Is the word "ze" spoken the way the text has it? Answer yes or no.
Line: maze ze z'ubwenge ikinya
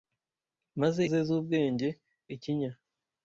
yes